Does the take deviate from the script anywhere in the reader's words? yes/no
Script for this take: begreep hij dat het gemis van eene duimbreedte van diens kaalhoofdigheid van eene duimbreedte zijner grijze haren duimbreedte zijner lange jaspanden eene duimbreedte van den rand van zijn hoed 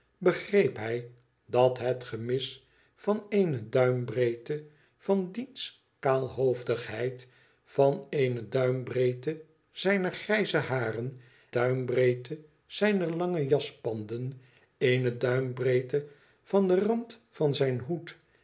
no